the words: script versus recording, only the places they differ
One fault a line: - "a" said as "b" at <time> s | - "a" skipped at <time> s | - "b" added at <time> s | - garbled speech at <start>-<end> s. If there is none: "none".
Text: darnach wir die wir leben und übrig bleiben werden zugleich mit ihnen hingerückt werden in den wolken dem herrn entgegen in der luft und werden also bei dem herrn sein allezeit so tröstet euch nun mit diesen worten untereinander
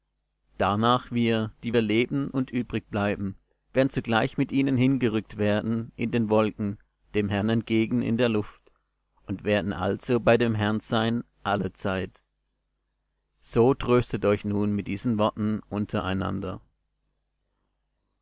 none